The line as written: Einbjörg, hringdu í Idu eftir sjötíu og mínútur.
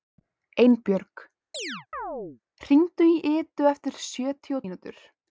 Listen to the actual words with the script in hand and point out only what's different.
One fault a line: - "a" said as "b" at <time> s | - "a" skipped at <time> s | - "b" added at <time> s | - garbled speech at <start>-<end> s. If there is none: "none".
none